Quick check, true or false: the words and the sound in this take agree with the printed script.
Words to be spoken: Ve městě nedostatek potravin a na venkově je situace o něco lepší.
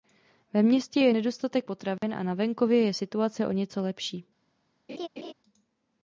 false